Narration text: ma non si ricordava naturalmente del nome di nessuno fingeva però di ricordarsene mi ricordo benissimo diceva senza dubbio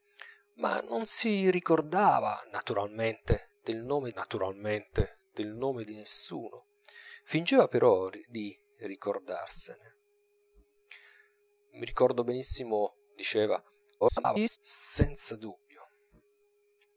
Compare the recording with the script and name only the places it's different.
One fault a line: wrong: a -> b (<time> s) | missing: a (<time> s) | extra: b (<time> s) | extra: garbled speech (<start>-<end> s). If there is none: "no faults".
extra: naturalmente del nome (4.1 s)
extra: garbled speech (14.0-14.6 s)